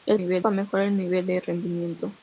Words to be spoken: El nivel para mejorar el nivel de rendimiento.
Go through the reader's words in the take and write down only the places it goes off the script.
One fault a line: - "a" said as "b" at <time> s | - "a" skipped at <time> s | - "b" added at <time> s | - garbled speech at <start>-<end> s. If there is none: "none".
none